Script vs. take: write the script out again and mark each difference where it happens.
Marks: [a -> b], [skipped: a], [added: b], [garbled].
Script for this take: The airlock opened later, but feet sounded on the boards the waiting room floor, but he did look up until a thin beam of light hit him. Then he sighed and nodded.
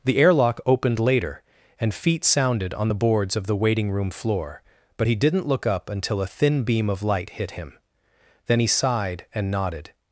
The airlock opened later, [but -> and] feet sounded on the boards [added: of] the waiting room floor, but he [did -> didn't] look up until a thin beam of light hit him. Then he sighed and nodded.